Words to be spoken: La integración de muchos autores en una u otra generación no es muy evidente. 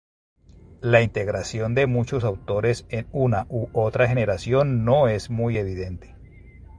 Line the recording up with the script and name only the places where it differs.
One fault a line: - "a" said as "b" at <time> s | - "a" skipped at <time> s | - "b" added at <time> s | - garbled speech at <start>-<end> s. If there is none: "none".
none